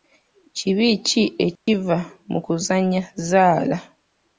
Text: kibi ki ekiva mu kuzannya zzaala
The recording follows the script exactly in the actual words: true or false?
true